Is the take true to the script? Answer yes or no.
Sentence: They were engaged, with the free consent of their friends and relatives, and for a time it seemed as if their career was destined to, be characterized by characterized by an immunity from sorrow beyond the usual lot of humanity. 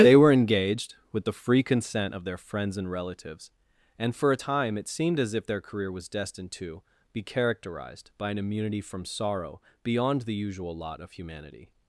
no